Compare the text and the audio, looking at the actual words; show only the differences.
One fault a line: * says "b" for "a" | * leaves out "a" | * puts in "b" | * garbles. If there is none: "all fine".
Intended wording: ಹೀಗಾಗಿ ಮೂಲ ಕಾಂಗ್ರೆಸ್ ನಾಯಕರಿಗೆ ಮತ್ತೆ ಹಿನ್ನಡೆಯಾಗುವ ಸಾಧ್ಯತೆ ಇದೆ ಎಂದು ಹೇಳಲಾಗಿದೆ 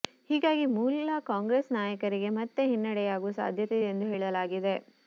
all fine